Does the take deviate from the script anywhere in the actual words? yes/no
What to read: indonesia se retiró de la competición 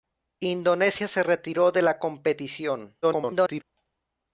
yes